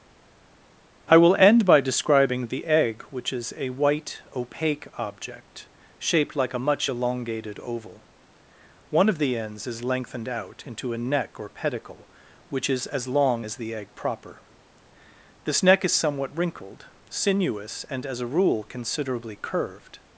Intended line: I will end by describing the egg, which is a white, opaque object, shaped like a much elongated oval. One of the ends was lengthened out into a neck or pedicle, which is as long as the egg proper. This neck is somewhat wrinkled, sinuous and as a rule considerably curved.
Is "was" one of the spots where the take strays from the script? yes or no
yes